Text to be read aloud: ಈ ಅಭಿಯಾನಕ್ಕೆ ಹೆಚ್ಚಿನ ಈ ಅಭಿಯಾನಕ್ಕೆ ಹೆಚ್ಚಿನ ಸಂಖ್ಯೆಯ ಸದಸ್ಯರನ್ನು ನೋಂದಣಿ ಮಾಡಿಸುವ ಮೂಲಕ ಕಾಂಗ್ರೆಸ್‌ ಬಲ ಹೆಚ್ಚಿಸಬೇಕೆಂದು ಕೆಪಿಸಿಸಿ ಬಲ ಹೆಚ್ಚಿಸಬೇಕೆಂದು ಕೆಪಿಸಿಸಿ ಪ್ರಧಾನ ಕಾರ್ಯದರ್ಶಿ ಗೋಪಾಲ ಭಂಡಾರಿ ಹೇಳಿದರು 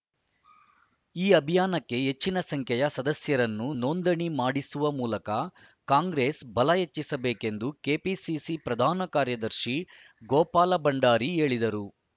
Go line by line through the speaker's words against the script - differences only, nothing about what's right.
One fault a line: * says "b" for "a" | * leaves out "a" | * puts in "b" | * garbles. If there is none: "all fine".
* leaves out "ಈ ಅಭಿಯಾನಕ್ಕೆ ಹೆಚ್ಚಿನ"
* leaves out "ಬಲ ಹೆಚ್ಚಿಸಬೇಕೆಂದು ಕೆಪಿಸಿಸಿ"